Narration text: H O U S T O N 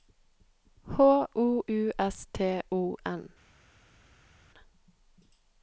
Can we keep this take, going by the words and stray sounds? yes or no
yes